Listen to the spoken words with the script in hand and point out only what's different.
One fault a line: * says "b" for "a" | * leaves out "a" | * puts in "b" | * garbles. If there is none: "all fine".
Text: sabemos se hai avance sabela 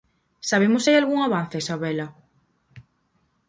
* puts in "algún"